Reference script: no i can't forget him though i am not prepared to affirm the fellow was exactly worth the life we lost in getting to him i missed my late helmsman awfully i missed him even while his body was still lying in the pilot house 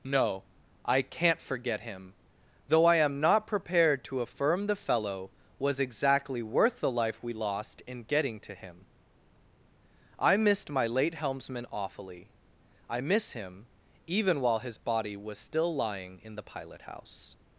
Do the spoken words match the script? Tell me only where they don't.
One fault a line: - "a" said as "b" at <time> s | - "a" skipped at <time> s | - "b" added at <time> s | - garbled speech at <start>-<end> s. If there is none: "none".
- "missed" said as "miss" at 13.0 s